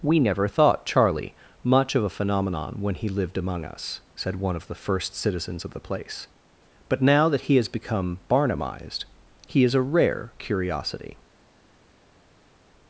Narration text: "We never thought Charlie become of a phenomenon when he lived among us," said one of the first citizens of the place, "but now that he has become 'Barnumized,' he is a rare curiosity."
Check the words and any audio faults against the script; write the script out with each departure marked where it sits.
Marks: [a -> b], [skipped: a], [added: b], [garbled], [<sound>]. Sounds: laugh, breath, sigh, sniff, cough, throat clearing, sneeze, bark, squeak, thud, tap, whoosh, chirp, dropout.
"We never thought Charlie [become -> much] of a phenomenon when he lived among us," said one of the first citizens of the place, "but now that he has become 'Barnumized,' he is a rare curiosity."